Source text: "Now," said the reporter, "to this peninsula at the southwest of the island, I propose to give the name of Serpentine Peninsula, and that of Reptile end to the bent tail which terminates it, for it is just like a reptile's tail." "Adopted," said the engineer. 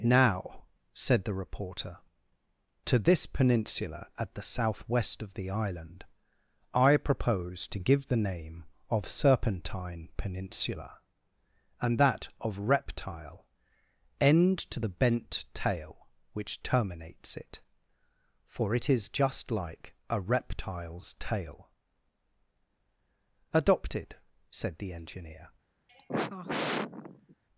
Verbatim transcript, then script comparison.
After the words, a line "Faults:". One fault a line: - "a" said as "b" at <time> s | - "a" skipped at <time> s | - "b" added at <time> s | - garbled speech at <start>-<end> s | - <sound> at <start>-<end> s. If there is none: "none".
"Now," said the reporter, "to this peninsula at the southwest of the island, I propose to give the name of Serpentine Peninsula, and that of Reptile end to the bent tail which terminates it, for it is just like a reptile's tail." "Adopted," said the engineer.
Faults:
- sigh at 25.9-27.4 s